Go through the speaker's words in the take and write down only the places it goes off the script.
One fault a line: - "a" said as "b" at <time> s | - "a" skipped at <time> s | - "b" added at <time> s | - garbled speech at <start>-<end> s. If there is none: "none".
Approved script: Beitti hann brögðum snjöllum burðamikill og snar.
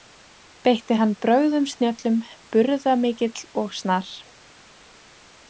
none